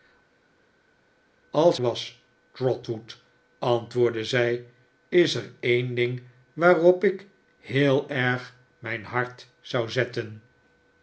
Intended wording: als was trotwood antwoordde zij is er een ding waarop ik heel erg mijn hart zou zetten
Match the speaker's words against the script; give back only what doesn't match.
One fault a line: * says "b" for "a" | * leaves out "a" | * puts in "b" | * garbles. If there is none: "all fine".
all fine